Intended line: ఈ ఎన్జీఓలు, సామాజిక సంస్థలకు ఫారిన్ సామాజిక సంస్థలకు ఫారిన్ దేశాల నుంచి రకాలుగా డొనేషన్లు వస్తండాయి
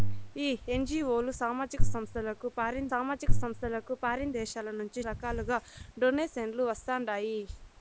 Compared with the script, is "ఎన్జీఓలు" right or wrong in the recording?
right